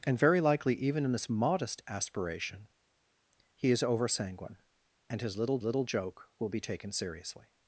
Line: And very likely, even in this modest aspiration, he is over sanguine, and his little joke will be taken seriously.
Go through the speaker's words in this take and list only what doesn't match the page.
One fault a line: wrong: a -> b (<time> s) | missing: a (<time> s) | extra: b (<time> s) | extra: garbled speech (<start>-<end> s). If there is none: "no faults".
extra: little (5.6 s)